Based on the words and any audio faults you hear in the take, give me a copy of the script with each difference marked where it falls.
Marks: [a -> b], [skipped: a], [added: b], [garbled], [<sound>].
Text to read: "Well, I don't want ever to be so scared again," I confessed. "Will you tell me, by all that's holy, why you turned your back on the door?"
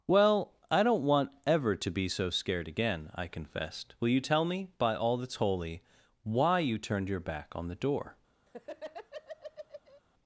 "Well, I don't want ever to be so scared again," I confessed. "Will you tell me, by all that's holy, why you turned your back on the door?" [laugh]